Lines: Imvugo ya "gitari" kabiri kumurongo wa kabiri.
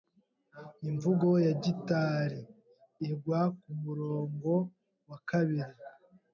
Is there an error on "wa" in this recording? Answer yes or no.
no